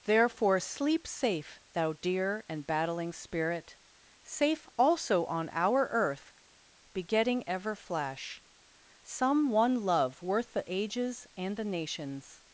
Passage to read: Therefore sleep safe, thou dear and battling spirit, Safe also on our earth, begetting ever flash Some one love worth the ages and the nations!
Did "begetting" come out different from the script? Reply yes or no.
no